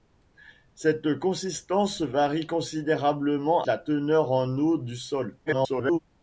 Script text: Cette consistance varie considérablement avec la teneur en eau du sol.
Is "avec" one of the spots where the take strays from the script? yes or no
yes